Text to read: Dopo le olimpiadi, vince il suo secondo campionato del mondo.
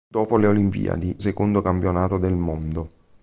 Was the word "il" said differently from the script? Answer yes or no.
yes